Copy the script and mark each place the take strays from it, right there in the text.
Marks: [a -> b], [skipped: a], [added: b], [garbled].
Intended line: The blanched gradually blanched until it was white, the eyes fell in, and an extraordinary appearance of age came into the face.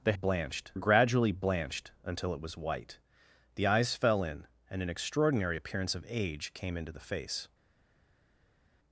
The blanched gradually blanched until it was white, the eyes fell in, and an extraordinary appearance of age came into the face.